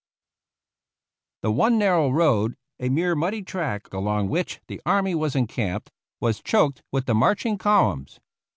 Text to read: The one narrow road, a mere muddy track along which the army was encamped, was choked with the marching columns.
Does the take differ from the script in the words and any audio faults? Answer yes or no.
no